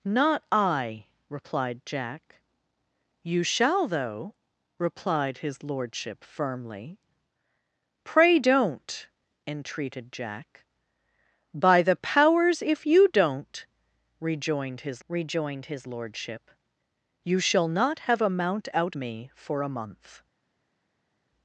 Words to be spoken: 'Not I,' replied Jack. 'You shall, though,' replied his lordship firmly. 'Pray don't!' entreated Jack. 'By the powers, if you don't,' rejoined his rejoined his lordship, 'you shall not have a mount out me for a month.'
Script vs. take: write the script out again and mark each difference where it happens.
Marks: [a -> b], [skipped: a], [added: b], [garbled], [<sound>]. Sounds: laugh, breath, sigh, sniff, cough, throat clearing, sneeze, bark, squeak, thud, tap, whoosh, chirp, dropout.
'Not I,' replied Jack. 'You shall, though,' replied his lordship firmly. 'Pray don't!' entreated Jack. 'By the powers, if you don't,' rejoined his rejoined his lordship, 'you shall not have a mount out me for a month.'